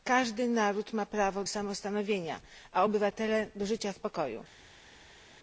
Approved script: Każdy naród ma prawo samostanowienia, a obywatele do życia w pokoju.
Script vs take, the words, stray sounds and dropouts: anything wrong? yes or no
no